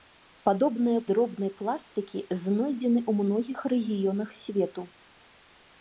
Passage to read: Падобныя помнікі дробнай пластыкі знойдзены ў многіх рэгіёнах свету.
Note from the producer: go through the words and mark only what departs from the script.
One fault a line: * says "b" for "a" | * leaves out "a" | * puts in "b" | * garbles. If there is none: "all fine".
* leaves out "помнікі"